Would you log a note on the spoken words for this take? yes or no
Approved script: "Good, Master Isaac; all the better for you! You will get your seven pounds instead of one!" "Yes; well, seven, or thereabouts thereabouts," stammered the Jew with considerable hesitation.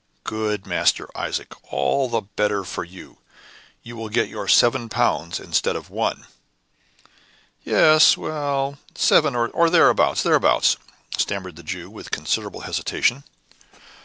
no